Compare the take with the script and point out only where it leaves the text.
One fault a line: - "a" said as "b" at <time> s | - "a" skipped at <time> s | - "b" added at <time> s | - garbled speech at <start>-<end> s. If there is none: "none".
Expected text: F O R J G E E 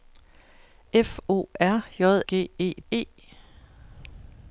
none